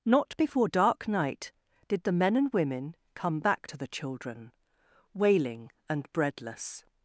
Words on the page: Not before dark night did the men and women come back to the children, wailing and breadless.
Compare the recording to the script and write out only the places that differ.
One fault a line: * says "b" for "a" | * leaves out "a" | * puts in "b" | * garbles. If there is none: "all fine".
all fine